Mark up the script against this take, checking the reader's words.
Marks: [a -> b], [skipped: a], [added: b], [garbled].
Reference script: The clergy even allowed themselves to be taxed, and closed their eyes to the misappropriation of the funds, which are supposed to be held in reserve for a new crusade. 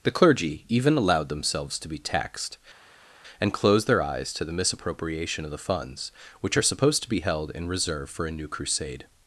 The clergy even allowed themselves to be taxed, and closed their eyes to the misappropriation of the funds, which are supposed to be held in reserve for a new crusade.